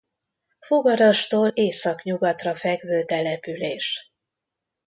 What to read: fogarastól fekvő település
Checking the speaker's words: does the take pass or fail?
fail